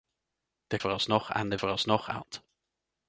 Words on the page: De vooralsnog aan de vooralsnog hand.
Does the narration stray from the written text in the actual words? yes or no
no